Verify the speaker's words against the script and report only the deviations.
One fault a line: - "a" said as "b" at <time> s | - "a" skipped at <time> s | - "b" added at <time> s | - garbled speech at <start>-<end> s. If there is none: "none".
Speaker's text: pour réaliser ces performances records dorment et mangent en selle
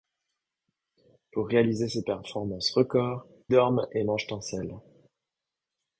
none